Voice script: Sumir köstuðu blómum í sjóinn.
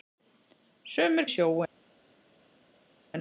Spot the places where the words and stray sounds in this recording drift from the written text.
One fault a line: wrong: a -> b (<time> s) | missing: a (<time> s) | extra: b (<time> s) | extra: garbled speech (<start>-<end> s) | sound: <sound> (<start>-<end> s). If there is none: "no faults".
missing: köstuðu blómum (1.3 s)